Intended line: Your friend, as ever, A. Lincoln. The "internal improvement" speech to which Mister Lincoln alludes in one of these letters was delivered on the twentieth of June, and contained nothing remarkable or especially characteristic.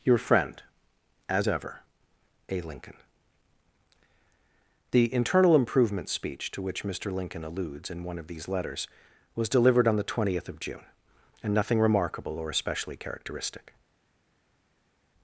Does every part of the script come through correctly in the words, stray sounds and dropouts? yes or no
no